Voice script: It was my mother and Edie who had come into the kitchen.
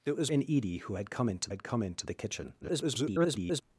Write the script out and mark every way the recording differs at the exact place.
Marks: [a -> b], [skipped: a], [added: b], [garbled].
It was [skipped: my mother] and Edie who had come into [added: had come into] the kitchen. [garbled]